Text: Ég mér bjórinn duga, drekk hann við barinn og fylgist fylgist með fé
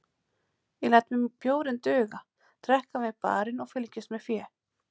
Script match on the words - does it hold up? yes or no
no